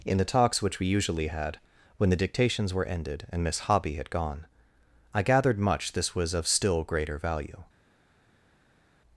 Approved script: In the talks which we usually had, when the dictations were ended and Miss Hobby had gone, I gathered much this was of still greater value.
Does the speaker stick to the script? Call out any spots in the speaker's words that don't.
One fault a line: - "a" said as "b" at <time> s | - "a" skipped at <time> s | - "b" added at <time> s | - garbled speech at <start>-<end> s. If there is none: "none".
none